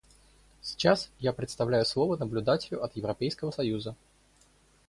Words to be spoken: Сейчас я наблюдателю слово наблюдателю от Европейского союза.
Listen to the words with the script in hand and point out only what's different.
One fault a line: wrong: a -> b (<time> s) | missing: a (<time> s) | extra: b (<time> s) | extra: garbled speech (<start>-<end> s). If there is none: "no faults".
wrong: наблюдателю -> предоставляю (1.3 s)